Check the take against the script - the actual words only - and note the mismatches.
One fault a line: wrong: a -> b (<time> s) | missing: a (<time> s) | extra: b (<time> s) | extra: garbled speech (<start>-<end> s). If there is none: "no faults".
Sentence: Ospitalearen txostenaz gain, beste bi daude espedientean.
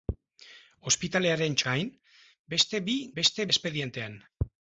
missing: txostenaz (1.6 s)
wrong: daude -> beste (3.2 s)